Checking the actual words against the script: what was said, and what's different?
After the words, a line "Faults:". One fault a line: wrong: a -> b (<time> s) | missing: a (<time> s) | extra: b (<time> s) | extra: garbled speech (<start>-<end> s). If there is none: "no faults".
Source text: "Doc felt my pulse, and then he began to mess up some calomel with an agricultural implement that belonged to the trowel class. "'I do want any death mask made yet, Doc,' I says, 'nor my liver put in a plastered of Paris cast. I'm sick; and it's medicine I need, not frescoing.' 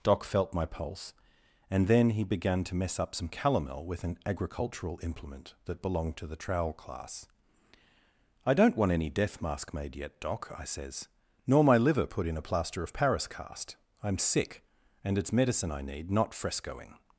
"Doc felt my pulse, and then he began to mess up some calomel with an agricultural implement that belonged to the trowel class. "'I don't want any death mask made yet, Doc,' I says, 'nor my liver put in a plaster of Paris cast. I'm sick; and it's medicine I need, not frescoing.'
Faults:
wrong: do -> don't (8.5 s)
wrong: plastered -> plaster (12.4 s)